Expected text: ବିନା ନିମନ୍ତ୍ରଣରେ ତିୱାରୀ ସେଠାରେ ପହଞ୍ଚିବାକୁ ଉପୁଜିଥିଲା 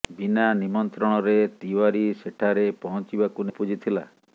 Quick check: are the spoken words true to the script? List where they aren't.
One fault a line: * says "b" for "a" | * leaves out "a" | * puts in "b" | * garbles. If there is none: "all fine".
all fine